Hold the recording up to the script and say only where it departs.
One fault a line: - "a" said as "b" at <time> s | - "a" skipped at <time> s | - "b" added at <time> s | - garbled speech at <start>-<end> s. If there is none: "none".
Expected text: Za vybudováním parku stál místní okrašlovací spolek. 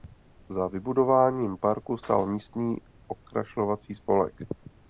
none